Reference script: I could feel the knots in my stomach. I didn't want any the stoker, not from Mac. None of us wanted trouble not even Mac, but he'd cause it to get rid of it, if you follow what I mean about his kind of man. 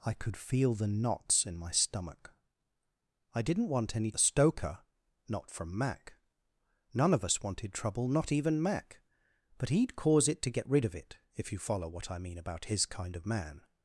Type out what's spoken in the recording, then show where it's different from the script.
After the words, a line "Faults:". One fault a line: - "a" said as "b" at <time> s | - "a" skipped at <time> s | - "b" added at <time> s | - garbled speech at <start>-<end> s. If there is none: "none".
I could feel the knots in my stomach. I didn't want any the stoker, not from Mac. None of us wanted trouble not even Mac, but he'd cause it to get rid of it, if you follow what I mean about his kind of man.
Faults:
none